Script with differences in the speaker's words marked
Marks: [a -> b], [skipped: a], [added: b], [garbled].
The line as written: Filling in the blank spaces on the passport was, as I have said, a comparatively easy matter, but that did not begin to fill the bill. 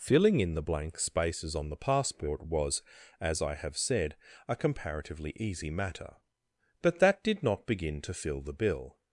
Filling in the blank spaces on the passport was, as I have said, a comparatively easy matter, but that did not begin to fill the bill.